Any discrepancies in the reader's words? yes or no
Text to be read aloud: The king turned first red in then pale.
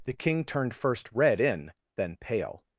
no